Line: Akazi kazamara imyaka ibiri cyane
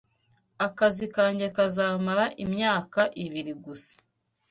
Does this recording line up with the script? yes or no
no